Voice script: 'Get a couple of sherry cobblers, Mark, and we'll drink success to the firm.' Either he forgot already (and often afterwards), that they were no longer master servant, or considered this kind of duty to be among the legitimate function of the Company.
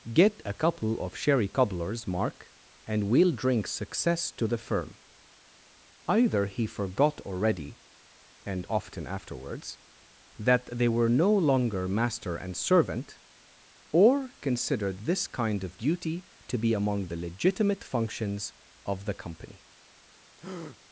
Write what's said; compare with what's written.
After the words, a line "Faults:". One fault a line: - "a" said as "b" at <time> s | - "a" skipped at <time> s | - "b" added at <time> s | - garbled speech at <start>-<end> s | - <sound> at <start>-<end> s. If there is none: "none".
'Get a couple of sherry cobblers, Mark, and we'll drink success to the firm.' Either he forgot already (and often afterwards), that they were no longer master and servant, or considered this kind of duty to be among the legitimate functions of the Company.
Faults:
- "and" added at 12.4 s
- "function" said as "functions" at 17.8 s
- breath at 20.4-20.8 s